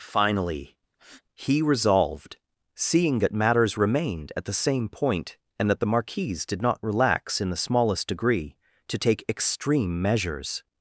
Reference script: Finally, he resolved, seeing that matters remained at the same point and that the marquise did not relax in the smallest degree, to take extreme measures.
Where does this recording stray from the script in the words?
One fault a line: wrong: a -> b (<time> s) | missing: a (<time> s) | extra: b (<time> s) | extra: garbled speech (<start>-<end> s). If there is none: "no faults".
no faults